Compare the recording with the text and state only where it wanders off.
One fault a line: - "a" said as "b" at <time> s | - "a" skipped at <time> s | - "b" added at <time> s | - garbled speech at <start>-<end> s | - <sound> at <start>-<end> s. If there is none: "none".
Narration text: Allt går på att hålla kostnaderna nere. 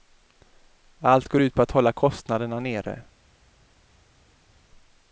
- "ut" added at 1.4 s